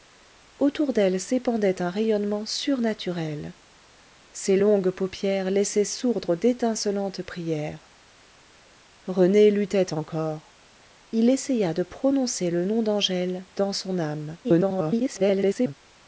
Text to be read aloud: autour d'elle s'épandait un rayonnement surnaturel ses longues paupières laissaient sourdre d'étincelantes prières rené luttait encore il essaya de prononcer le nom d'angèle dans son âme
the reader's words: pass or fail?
fail